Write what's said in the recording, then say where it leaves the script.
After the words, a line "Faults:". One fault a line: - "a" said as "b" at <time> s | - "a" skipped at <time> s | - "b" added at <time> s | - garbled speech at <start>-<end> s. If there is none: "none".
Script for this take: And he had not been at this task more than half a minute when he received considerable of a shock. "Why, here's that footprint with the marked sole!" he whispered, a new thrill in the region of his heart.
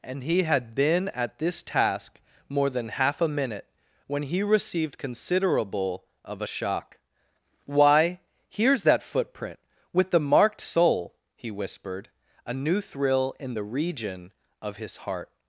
And he had been at this task more than half a minute when he received considerable of a shock. "Why, here's that footprint with the marked sole!" he whispered, a new thrill in the region of his heart.
Faults:
- "not" skipped at 0.7 s